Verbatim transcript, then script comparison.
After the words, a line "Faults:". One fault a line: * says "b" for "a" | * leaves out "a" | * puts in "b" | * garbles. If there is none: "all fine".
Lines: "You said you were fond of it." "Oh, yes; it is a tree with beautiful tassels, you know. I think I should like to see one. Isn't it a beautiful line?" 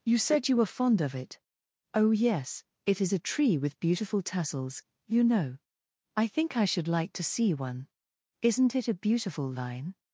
"You said you were fond of it." "Oh, yes; it is a tree with beautiful tassels, you know. I think I should like to see one. Isn't it a beautiful line?"
Faults:
all fine